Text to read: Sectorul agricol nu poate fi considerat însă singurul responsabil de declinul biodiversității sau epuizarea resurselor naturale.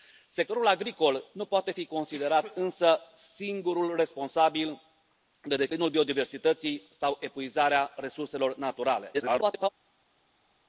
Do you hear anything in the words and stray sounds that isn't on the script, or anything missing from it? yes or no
yes